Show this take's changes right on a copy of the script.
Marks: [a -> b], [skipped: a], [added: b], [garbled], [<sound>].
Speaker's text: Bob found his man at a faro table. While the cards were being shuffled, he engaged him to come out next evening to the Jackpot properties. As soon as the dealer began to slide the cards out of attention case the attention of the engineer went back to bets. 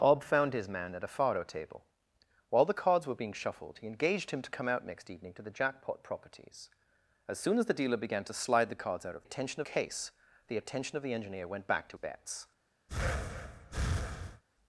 Bob found his man at a faro table. While the cards were being shuffled, he engaged him to come out next evening to the Jackpot properties. As soon as the dealer began to slide the cards out of attention case the attention of the engineer went back to bets. [breath]